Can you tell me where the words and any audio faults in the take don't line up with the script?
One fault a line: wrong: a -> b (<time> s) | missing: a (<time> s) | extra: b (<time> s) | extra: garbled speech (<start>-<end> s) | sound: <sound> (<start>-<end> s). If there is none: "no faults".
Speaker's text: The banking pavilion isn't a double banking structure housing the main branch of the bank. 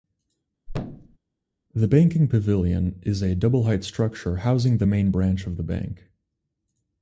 sound: thud (0.7-1.2 s)
wrong: isn't -> is (3.0 s)
wrong: banking -> height (3.6 s)